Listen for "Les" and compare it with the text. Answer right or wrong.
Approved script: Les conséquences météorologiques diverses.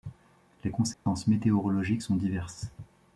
right